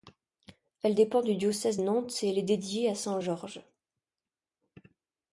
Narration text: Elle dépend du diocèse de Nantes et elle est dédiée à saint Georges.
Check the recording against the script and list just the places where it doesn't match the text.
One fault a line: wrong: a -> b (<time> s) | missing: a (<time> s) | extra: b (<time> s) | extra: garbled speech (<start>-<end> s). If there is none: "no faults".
missing: de (1.8 s)